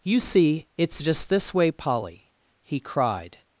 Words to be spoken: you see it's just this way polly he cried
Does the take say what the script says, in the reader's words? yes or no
yes